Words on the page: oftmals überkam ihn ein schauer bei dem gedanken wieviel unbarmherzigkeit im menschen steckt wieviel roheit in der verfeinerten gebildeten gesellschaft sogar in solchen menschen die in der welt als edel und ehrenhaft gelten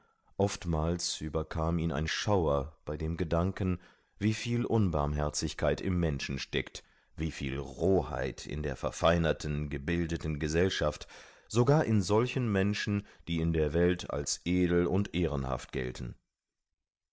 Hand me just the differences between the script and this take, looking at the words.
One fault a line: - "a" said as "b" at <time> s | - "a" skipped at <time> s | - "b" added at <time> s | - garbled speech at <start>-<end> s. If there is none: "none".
none